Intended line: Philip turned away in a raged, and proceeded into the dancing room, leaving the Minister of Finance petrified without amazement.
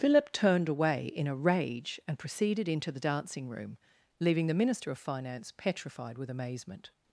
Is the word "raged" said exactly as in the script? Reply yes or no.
no